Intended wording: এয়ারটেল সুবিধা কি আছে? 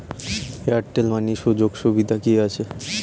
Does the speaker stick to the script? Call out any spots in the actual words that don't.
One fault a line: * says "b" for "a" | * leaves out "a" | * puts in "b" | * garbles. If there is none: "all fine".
* puts in "মানি সুযোগ"